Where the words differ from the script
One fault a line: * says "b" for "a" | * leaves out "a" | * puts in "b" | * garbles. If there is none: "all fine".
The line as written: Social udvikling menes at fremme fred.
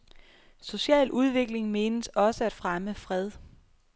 * puts in "også"